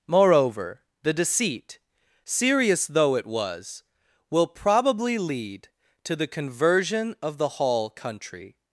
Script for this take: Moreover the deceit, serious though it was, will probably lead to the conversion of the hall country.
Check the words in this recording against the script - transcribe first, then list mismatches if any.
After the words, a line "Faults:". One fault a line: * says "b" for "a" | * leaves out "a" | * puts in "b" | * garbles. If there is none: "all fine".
Moreover the deceit, serious though it was, will probably lead to the conversion of the hall country.
Faults:
all fine